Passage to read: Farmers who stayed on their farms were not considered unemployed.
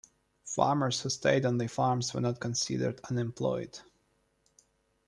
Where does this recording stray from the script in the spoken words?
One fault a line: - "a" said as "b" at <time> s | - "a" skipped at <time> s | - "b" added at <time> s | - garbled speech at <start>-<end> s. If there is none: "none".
none